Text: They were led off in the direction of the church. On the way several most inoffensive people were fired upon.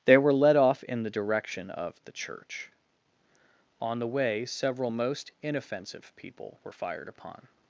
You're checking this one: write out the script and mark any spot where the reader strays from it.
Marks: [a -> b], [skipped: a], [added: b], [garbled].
They were led off in the direction of the church. On the way several most inoffensive people were fired upon.